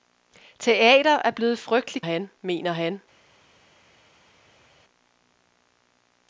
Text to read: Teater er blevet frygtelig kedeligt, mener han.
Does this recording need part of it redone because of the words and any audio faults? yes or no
yes